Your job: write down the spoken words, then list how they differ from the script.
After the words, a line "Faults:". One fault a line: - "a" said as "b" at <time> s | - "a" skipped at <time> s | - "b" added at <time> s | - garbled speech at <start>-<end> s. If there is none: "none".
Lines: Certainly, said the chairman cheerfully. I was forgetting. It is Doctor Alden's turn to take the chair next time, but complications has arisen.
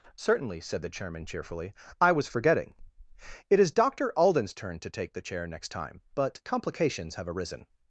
Certainly, said the chairman cheerfully. I was forgetting. It is Doctor Alden's turn to take the chair next time, but complications have arisen.
Faults:
- "has" said as "have" at 7.1 s